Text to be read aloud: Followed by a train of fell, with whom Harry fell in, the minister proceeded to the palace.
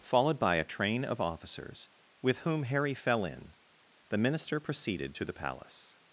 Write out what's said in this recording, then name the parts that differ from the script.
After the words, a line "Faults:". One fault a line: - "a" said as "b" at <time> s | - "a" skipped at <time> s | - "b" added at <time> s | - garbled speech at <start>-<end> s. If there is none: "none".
Followed by a train of officers, with whom Harry fell in, the minister proceeded to the palace.
Faults:
- "fell" said as "officers" at 1.2 s